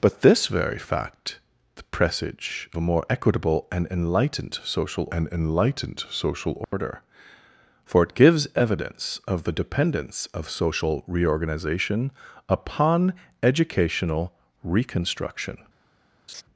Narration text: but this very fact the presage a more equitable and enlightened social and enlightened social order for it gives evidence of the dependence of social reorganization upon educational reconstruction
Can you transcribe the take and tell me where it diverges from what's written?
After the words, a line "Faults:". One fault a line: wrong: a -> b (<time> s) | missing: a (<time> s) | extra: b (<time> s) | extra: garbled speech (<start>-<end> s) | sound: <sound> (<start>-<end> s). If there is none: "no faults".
but this very fact the presage a more equitable and enlightened social and enlightened social order for it gives evidence of the dependence of social reorganization upon educational reconstruction
Faults:
sound: dropout (6.6-6.7 s)
sound: laugh (16.3-16.4 s)